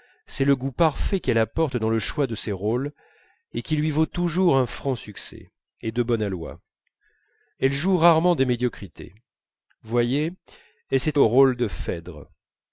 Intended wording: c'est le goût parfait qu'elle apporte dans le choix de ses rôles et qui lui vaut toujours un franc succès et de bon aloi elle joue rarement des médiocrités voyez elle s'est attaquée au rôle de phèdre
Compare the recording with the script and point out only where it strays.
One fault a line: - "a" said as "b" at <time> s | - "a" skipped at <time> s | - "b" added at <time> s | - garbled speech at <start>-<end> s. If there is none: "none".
- "attaquée" skipped at 11.2 s